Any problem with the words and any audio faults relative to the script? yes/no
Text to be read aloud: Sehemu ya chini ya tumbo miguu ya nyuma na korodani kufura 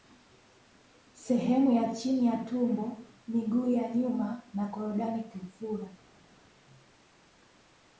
no